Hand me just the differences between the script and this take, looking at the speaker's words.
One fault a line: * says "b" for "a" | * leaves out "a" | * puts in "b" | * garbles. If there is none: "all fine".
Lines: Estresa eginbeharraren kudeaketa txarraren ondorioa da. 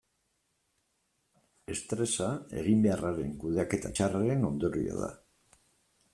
all fine